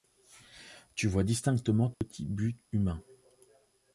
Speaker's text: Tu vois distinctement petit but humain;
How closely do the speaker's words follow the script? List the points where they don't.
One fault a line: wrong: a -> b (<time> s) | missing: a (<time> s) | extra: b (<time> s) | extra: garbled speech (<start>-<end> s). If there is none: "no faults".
no faults